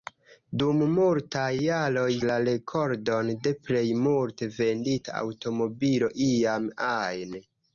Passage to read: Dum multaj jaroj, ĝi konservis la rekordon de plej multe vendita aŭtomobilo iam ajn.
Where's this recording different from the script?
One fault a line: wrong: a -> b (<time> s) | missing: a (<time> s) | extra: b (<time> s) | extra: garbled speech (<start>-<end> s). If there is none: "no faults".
missing: ĝi konservis (2.0 s)